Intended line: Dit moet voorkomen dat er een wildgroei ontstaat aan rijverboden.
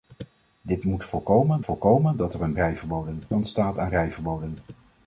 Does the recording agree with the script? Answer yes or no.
no